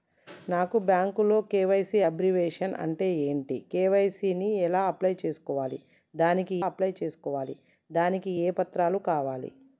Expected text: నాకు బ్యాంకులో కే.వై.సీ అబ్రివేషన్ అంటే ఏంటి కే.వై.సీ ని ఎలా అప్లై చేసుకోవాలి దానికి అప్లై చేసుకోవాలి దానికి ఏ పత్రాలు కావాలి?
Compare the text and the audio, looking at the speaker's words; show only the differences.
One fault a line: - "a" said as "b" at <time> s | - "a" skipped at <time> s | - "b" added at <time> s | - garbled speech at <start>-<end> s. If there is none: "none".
none